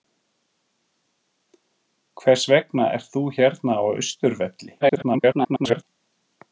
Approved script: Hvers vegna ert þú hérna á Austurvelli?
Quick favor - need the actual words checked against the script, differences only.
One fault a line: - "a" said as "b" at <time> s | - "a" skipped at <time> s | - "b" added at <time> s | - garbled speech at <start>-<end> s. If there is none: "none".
- garbled speech at 4.8-5.8 s